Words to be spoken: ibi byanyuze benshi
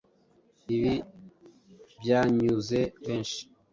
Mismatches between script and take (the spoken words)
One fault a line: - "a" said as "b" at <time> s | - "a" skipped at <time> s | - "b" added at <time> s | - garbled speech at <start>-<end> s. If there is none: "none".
none